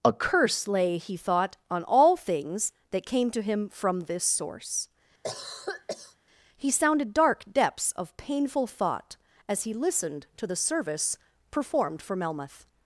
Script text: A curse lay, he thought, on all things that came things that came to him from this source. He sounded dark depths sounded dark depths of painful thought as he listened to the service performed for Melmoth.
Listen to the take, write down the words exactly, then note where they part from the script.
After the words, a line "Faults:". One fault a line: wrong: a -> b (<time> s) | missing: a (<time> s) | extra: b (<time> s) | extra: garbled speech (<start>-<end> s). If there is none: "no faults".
A curse lay, he thought, on all things that came to him from this source. He sounded dark depths of painful thought as he listened to the service performed for Melmoth.
Faults:
missing: things that came (3.3 s)
missing: sounded dark depths (7.9 s)